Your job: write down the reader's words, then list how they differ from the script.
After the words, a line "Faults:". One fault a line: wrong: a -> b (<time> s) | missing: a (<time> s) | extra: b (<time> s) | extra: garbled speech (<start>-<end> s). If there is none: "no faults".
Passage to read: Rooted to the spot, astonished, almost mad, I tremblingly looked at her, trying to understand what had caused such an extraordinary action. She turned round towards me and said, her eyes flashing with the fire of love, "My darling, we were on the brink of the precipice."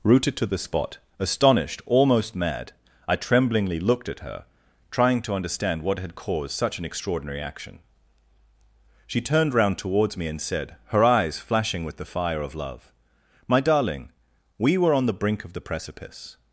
Rooted to the spot, astonished, almost mad, I tremblingly looked at her, trying to understand what had caused such an extraordinary action. She turned round towards me and said, her eyes flashing with the fire of love, "My darling, we were on the brink of the precipice."
Faults:
no faults